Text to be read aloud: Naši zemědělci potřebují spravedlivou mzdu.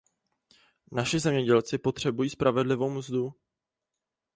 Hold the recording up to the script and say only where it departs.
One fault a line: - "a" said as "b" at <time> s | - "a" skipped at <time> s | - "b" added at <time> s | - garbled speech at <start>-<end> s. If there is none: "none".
none